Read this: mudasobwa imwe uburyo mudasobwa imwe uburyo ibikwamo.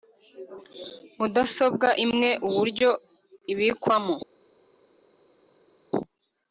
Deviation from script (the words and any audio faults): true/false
true